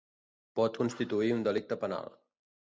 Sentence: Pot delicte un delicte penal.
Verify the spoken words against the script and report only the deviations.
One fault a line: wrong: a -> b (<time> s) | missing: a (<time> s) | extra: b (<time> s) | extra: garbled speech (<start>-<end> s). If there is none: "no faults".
wrong: delicte -> constituir (0.8 s)